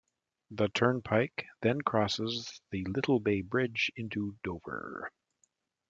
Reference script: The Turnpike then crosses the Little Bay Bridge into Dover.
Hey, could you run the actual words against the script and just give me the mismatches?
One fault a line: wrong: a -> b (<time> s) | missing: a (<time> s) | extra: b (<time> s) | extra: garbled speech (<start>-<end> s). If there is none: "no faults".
no faults